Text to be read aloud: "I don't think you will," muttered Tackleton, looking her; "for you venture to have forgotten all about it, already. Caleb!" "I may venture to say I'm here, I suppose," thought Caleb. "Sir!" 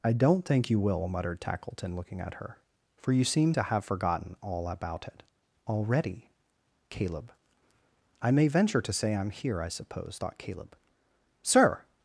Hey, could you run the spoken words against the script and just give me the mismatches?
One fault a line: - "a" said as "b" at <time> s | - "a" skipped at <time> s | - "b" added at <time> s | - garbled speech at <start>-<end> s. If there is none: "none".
- "at" added at 2.2 s
- "venture" said as "seem" at 3.2 s